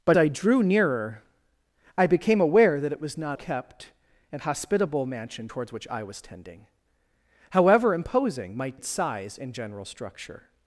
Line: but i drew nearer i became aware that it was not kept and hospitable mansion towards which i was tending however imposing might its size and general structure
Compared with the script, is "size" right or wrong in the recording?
right